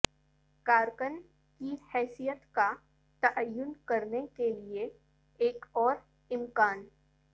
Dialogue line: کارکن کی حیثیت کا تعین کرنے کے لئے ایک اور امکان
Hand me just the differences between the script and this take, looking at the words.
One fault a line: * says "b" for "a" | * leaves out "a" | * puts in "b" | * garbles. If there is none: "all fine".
all fine